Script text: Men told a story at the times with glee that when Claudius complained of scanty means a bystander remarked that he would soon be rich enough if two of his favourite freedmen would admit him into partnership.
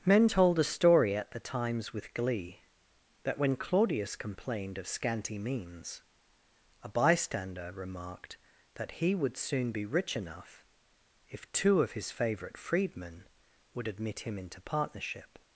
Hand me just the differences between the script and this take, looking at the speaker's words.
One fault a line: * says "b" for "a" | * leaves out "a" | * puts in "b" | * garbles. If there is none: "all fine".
all fine